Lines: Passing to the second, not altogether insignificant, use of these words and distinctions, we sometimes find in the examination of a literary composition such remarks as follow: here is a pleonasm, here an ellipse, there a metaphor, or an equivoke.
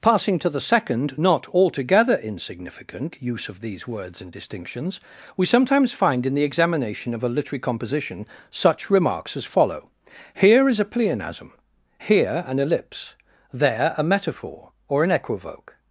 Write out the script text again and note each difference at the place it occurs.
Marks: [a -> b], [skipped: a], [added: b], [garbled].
Passing to the second, not altogether insignificant, use of these words and distinctions, we sometimes find in the examination of a literary composition such remarks as follow: here is a pleonasm, here an ellipse, there a metaphor, or an equivoke.